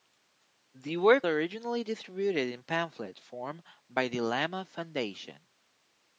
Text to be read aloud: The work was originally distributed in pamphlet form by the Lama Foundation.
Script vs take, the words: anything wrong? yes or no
yes